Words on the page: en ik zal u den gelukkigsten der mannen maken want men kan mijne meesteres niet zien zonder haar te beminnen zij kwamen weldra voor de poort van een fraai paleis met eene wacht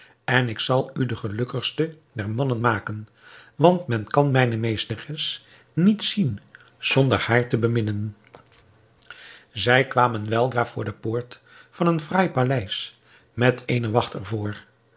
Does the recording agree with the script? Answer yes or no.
yes